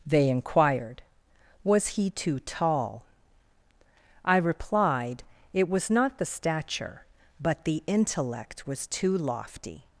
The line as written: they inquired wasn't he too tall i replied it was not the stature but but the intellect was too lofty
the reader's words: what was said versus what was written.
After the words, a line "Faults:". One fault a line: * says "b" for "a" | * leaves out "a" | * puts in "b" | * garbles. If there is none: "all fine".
they inquired was he too tall i replied it was not the stature but the intellect was too lofty
Faults:
* says "was" for "wasn't"
* leaves out "but"